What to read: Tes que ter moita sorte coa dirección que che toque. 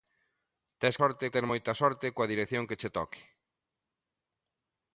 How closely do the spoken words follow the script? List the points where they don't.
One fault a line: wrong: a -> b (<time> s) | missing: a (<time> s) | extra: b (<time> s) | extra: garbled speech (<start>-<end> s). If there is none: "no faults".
wrong: que -> sorte (1.0 s)